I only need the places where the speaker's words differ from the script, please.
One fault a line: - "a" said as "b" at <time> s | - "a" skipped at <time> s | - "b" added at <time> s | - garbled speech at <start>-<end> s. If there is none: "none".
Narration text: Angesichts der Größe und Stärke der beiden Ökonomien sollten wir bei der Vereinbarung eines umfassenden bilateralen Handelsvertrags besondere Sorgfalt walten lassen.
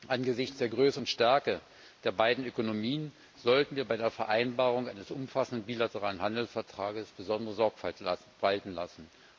none